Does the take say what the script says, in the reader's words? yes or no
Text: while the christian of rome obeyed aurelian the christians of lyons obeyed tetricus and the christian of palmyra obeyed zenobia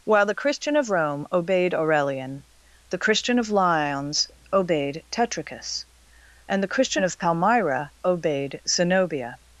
no